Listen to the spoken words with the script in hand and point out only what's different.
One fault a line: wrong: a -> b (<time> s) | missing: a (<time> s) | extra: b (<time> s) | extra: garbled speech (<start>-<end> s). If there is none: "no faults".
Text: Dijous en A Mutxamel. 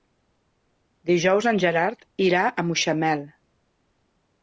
extra: Gerard irà (1.6 s)